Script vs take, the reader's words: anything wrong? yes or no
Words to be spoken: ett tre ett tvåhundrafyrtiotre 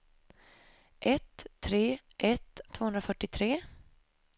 no